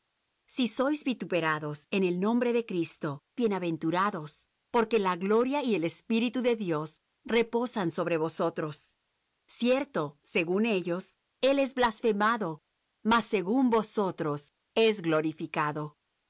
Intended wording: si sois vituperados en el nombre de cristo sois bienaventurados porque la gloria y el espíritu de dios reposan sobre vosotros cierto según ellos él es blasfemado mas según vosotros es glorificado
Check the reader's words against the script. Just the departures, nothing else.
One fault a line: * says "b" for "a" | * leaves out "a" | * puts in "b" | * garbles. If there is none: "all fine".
* leaves out "sois"